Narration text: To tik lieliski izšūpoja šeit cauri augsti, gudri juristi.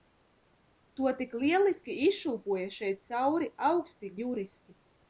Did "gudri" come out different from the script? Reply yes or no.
yes